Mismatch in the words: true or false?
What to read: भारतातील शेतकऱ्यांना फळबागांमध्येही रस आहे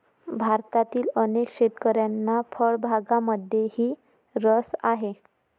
true